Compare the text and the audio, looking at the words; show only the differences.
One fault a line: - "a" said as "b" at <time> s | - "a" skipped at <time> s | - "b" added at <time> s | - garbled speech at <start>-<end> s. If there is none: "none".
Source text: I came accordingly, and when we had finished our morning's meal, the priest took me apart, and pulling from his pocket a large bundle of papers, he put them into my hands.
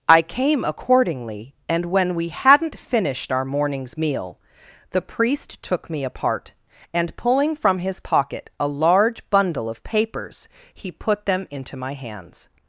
- "had" said as "hadn't" at 2.3 s